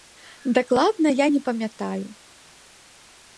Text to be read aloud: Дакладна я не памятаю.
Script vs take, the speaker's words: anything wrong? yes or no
no